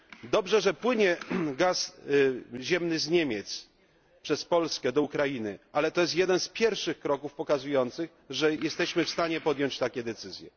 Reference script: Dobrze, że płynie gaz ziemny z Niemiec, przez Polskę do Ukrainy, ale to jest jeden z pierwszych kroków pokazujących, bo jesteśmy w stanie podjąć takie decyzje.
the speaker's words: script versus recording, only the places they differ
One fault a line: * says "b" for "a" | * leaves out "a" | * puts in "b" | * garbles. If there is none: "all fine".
* says "że" for "bo"